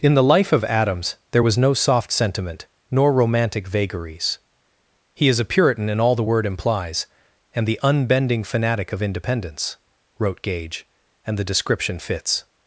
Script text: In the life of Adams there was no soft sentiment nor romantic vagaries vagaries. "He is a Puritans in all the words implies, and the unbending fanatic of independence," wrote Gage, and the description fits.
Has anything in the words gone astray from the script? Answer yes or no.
yes